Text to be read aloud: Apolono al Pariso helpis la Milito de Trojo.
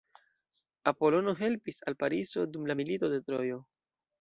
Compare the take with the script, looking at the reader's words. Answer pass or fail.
fail